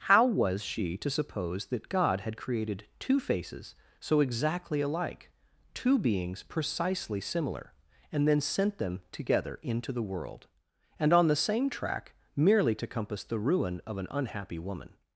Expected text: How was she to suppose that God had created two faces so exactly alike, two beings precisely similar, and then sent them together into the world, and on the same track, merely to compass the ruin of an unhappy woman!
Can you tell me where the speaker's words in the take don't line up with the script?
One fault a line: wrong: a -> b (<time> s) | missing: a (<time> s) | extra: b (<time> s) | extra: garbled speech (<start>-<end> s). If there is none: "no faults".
no faults